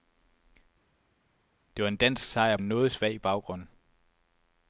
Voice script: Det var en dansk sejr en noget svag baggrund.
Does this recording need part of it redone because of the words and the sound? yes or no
no